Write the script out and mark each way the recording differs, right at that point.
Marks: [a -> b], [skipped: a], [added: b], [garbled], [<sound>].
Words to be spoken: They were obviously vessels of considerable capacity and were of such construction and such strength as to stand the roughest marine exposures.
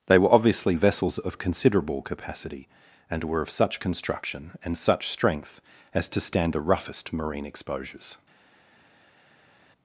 They were obviously vessels of considerable capacity and were of such construction and such strength as to stand the roughest marine exposures.